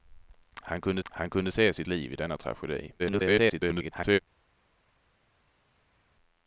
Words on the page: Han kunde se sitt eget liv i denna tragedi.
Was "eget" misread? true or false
true